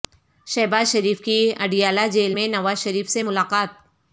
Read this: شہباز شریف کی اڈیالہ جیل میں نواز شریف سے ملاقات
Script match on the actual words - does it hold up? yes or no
yes